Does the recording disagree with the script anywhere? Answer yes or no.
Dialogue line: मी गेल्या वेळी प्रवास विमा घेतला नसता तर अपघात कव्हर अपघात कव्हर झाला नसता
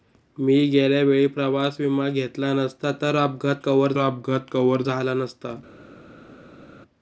no